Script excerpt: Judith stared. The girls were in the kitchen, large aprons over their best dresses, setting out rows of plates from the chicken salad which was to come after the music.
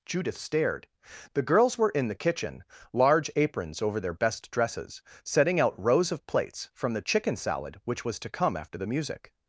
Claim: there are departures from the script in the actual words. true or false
false